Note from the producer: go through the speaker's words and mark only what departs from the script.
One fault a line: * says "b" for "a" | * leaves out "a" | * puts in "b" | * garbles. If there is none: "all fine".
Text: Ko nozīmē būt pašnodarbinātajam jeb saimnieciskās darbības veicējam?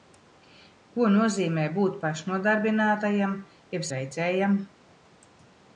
* leaves out "saimnieciskās darbības"